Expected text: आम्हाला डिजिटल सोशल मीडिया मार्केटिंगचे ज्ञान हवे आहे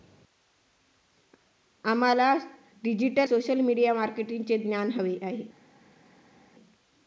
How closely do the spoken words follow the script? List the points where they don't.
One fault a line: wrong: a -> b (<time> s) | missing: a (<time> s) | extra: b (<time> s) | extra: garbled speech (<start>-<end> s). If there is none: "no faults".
no faults